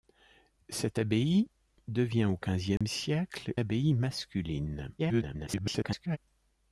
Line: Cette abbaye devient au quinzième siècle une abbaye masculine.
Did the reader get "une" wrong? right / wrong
wrong